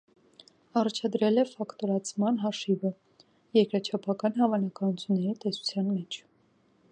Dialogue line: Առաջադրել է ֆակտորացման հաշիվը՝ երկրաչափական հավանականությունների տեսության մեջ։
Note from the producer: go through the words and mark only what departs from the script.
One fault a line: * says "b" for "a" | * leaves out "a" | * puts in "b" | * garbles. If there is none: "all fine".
all fine